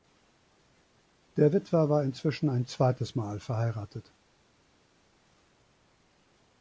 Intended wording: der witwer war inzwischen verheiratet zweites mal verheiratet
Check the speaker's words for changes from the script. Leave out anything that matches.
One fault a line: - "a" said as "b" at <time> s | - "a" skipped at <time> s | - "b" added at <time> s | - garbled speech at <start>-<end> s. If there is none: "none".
- "verheiratet" said as "ein" at 2.5 s